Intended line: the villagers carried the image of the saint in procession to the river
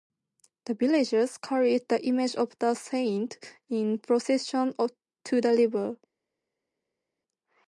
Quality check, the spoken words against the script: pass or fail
pass